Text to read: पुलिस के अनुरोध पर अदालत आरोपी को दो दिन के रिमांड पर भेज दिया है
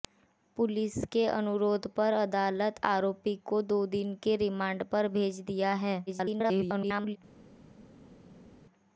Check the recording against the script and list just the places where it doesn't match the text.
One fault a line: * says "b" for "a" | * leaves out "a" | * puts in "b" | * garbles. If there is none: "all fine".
* garbles